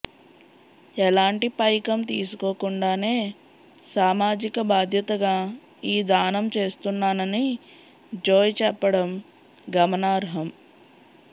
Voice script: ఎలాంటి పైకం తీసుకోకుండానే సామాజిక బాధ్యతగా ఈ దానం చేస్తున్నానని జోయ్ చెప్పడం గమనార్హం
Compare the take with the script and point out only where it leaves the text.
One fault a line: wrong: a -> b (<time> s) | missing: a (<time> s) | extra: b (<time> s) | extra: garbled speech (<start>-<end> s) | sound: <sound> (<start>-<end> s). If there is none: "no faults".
no faults